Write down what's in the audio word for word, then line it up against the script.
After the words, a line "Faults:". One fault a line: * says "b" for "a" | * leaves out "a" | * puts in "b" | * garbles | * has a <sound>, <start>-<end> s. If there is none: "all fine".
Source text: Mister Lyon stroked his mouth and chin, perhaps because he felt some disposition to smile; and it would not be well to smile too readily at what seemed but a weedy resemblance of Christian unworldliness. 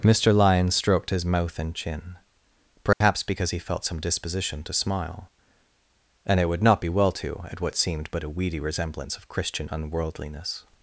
Mister Lyon stroked his mouth and chin, perhaps because he felt some disposition to smile; and it would not be well to at what seemed but a weedy resemblance of Christian unworldliness.
Faults:
* has a dropout, 2.9-3.0 s
* leaves out "smile too readily"